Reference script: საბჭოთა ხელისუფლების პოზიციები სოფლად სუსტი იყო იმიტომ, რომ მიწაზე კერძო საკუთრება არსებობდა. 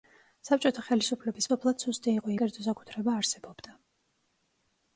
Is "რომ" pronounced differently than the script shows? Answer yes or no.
yes